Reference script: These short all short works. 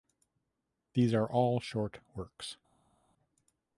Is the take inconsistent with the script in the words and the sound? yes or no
yes